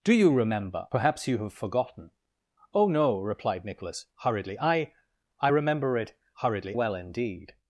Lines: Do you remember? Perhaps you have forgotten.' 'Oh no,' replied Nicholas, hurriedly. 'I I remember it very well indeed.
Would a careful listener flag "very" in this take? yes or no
yes